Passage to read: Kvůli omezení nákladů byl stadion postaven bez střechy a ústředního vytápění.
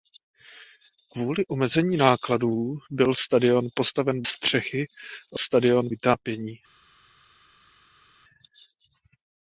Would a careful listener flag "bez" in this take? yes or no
yes